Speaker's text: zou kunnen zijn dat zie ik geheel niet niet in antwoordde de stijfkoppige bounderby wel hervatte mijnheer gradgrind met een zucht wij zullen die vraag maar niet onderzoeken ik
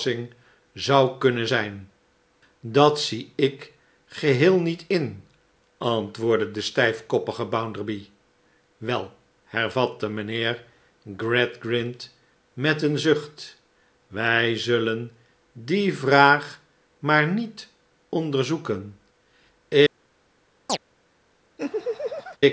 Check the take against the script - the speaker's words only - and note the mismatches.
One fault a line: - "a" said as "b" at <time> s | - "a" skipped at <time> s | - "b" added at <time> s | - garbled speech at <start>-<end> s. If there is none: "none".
- "niet" skipped at 4.8 s